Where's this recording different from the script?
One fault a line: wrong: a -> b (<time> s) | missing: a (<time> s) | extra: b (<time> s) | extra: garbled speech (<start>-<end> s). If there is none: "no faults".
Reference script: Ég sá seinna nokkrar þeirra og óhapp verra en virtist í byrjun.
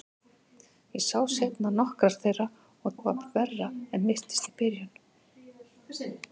no faults